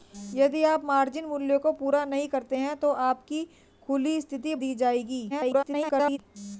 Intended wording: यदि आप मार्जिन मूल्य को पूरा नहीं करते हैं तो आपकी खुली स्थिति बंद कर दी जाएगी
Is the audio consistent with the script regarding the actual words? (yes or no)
no